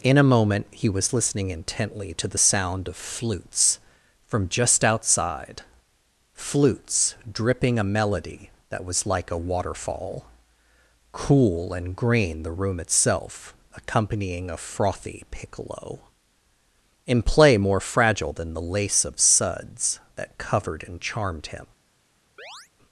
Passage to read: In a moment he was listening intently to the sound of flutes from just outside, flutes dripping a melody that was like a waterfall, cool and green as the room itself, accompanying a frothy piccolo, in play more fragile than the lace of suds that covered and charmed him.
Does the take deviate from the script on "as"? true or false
true